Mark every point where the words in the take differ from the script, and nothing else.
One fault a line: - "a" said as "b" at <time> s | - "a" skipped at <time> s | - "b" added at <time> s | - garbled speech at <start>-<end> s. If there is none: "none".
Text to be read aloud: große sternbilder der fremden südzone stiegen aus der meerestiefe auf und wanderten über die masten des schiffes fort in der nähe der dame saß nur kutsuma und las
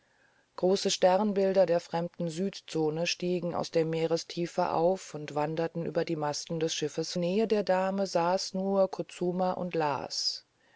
- "fort in der" skipped at 7.1 s